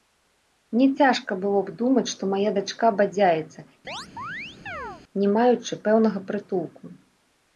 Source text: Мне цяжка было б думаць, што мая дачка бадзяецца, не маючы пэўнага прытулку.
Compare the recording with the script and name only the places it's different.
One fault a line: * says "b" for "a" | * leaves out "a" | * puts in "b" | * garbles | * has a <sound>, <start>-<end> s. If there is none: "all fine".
* has a chirp, 3.9-5.0 s